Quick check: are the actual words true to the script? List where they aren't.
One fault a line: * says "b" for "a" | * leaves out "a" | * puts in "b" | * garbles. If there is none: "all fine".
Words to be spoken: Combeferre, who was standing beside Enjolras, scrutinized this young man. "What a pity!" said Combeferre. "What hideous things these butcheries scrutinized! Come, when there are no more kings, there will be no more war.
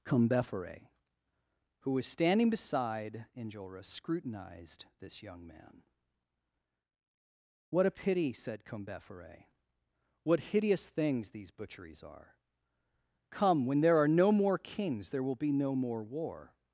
* says "are" for "scrutinized"